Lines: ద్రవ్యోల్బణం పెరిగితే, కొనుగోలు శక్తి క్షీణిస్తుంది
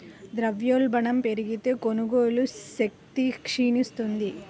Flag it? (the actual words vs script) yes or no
no